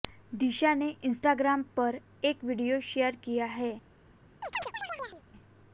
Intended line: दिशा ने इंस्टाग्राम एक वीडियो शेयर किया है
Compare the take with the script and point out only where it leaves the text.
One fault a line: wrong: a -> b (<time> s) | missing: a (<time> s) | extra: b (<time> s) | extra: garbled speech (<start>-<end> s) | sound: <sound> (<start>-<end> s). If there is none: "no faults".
extra: पर (1.8 s)
sound: chirp (4.4-5.2 s)